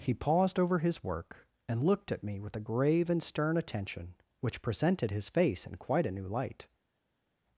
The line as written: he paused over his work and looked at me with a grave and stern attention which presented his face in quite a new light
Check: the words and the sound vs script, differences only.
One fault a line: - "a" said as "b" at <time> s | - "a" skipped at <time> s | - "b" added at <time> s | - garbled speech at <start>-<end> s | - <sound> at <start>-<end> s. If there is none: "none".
none